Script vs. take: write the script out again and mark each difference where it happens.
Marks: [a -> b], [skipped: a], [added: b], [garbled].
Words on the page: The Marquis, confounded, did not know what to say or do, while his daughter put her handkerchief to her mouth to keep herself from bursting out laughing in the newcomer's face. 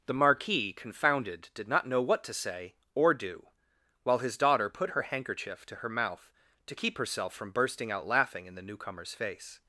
The Marquis, confounded, did not know what to say or do, while his daughter put her handkerchief to her mouth to keep herself from bursting out laughing in the newcomer's face.